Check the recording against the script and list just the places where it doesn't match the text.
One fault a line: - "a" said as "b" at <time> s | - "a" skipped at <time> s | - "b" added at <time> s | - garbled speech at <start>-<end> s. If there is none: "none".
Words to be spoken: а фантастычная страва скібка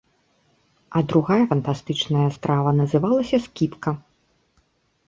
- "другая" added at 1.1 s
- "называлася" added at 2.8 s